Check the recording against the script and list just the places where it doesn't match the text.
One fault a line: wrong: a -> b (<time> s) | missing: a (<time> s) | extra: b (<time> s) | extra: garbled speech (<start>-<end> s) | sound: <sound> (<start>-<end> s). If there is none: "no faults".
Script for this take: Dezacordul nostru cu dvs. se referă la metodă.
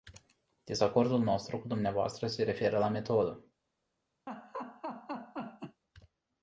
sound: laugh (4.3-5.8 s)